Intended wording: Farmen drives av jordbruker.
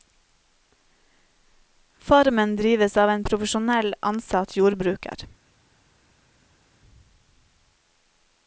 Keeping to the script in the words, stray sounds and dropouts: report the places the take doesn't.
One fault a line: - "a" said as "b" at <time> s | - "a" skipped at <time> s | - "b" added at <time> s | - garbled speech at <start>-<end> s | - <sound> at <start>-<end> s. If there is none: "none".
- "en profesjonell ansatt" added at 3.1 s